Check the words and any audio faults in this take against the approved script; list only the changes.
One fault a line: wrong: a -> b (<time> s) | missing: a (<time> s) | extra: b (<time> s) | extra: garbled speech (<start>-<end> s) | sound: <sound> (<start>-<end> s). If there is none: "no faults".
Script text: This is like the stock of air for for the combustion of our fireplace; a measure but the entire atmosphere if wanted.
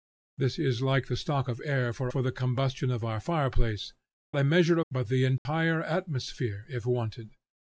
sound: dropout (5.4-5.5 s)